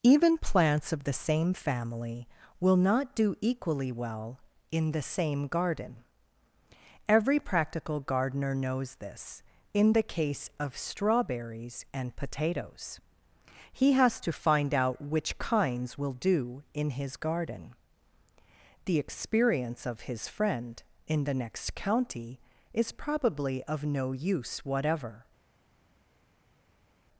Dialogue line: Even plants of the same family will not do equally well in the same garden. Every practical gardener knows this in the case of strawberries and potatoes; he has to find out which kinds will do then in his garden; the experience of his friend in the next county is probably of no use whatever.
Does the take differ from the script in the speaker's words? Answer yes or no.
yes